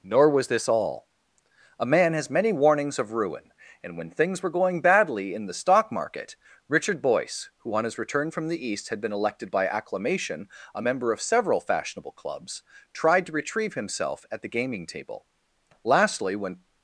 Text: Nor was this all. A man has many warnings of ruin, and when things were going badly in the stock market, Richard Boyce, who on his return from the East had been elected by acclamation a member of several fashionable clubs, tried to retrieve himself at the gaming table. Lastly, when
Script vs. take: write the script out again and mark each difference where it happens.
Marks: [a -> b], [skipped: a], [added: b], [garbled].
Nor was this all. A man has many warnings of ruin, and when things were going badly in the stock market, Richard Boyce, who on his return from the East had been elected by acclamation a member of several fashionable clubs, tried to retrieve himself at the gaming table. Lastly, when